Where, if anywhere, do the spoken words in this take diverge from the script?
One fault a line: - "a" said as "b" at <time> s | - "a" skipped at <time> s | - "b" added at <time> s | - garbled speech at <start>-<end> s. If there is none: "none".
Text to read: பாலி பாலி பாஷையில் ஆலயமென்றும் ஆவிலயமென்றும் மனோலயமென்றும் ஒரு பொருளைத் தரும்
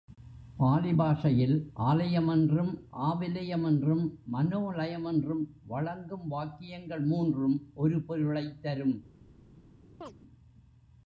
- "பாலி" skipped at 0.9 s
- "வழங்கும் வாக்கியங்கள் மூன்றும்" added at 5.7 s